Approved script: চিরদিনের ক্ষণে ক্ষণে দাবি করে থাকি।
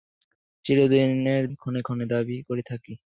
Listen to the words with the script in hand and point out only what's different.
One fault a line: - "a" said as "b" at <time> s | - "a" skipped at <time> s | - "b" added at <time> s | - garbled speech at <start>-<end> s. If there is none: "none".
none